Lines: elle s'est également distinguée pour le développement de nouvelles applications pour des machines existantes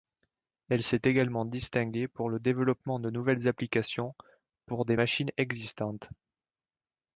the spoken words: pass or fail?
pass